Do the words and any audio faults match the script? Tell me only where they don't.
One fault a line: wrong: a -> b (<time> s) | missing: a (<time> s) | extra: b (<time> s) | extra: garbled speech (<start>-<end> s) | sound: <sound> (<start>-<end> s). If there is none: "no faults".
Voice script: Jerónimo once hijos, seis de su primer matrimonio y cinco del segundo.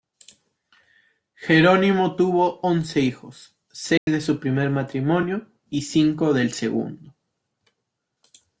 extra: tuvo (2.2 s)
sound: dropout (4.0-4.1 s)